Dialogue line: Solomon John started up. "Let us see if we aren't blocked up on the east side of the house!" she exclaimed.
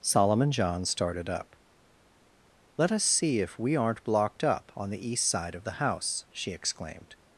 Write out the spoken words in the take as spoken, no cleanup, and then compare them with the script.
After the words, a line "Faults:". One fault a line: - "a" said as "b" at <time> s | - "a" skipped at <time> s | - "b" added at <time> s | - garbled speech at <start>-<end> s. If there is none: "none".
Solomon John started up. "Let us see if we aren't blocked up on the east side of the house!" she exclaimed.
Faults:
none